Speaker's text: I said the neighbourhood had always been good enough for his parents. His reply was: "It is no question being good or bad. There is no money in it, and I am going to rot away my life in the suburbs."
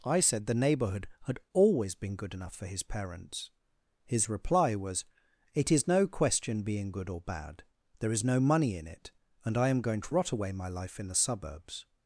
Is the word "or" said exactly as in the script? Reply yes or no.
yes